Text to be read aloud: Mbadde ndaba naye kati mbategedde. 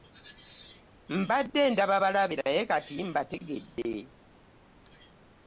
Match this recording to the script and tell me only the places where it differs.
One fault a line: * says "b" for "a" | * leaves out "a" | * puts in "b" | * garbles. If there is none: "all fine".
* puts in "balabe"